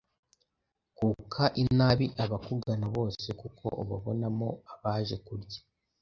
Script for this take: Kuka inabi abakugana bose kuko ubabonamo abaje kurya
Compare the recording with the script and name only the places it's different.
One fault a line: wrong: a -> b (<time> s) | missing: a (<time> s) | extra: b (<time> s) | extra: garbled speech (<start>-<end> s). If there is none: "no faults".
no faults